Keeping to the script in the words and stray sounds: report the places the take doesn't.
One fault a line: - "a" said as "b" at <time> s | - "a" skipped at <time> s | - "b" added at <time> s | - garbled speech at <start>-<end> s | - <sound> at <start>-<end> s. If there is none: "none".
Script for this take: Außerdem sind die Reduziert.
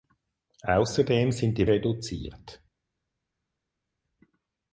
none